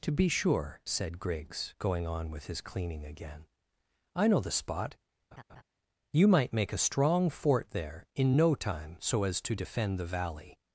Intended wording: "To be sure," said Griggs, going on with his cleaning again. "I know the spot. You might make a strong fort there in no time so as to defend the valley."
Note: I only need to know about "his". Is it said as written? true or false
true